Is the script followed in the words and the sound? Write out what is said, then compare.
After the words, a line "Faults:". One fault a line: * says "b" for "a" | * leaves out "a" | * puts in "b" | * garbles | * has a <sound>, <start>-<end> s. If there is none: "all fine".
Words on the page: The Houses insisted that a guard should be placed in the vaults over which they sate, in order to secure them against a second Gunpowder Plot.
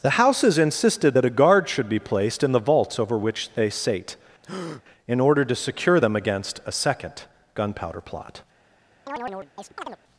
The Houses insisted that a guard should be placed in the vaults over which they sate, in order to secure them against a second Gunpowder Plot.
Faults:
* has a breath, 4.4-4.8 s
* has a chirp, 9.1-10.0 s